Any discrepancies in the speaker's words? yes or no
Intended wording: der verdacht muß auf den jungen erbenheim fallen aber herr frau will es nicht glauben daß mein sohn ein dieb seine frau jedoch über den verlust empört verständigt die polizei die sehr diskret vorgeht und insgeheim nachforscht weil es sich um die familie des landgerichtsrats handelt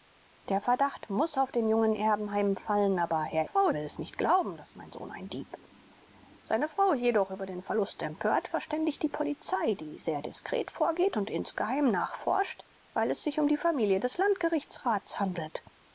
no